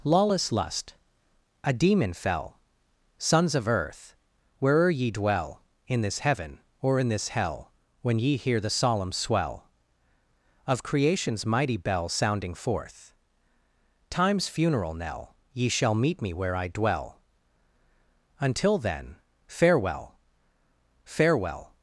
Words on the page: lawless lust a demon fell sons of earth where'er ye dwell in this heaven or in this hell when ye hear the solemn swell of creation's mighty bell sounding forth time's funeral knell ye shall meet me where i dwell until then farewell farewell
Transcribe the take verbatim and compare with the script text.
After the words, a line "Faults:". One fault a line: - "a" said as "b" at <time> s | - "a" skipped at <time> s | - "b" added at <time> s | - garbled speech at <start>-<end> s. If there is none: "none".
lawless lust a demon fell sons of earth where'er ye dwell in this heaven or in this hell when ye hear the solemn swell of creation's mighty bell sounding forth time's funeral knell ye shall meet me where i dwell until then farewell farewell
Faults:
none